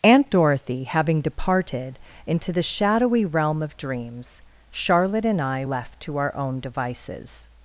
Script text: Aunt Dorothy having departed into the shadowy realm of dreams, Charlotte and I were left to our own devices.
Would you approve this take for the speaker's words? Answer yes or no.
no